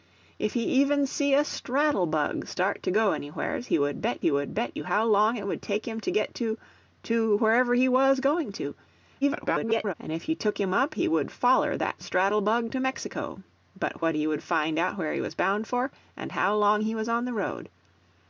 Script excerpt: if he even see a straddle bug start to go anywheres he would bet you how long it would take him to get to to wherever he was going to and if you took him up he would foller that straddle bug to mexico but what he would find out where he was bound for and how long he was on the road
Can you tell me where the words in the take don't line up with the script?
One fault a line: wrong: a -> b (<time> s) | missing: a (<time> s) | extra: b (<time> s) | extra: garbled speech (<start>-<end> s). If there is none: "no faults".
extra: he would bet (4.2 s)
extra: garbled speech (9.2-9.9 s)